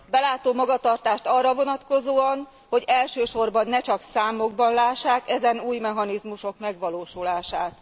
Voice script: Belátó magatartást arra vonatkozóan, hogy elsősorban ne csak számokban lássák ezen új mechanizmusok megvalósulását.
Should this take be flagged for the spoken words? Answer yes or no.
no